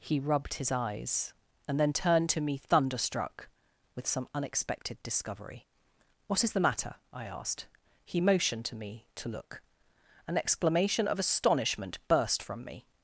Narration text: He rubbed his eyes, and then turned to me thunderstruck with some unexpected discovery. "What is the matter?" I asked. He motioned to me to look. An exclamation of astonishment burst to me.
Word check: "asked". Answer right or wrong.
right